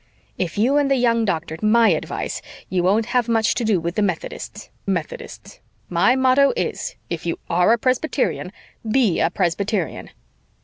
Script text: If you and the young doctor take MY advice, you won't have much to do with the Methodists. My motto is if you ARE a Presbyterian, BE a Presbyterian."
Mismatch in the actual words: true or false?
true